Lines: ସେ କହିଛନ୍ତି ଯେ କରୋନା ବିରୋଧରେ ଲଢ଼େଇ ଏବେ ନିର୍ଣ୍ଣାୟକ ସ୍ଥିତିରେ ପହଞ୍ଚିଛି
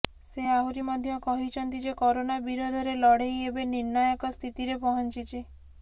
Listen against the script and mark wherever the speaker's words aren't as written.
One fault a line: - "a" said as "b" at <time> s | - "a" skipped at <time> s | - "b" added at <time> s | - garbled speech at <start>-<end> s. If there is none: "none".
- "ଆହୁରି ମଧ୍ୟ" added at 0.5 s